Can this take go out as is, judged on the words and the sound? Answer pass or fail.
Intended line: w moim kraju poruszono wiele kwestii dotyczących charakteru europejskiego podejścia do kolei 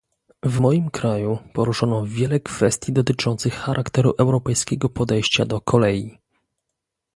pass